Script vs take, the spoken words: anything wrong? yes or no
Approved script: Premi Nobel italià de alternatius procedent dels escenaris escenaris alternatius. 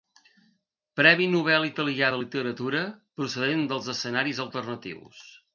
yes